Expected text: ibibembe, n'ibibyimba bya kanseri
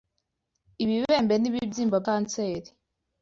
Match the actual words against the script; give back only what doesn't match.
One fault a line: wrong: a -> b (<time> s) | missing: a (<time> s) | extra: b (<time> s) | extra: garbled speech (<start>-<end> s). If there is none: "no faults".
missing: bya (2.0 s)